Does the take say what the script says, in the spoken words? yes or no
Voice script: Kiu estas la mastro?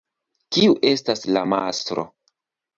yes